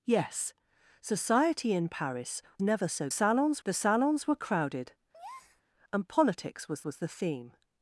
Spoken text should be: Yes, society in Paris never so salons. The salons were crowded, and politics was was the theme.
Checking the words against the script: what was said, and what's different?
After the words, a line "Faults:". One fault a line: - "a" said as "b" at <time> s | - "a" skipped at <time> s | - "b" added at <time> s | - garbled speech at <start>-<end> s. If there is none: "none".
Yes, society in Paris never so salons. The salons were crowded, and politics was was the theme.
Faults:
none